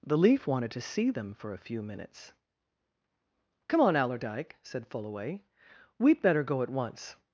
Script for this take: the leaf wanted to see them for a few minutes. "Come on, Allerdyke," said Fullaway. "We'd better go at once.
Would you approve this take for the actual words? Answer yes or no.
yes